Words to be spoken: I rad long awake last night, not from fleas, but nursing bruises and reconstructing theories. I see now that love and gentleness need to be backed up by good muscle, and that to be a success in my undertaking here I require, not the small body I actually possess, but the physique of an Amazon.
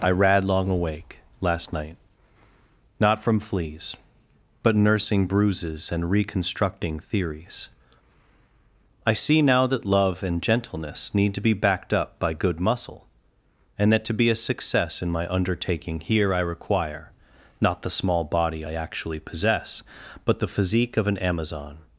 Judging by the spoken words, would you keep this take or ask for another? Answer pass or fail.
pass